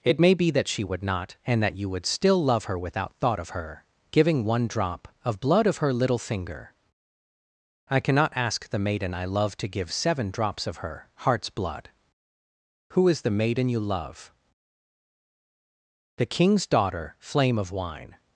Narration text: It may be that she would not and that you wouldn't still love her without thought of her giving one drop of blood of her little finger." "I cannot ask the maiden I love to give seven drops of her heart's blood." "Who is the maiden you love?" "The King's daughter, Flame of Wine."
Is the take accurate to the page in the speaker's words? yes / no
no